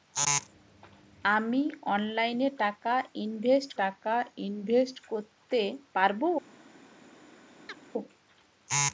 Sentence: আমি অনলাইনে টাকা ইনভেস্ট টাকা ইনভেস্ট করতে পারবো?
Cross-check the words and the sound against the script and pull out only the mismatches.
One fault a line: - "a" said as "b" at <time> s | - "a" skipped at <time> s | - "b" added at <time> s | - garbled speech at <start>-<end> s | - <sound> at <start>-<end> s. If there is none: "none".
- chirp at 7.7-7.8 s